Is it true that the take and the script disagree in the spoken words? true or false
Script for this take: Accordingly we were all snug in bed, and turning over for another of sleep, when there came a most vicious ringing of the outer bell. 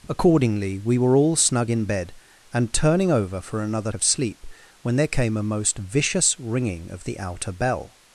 false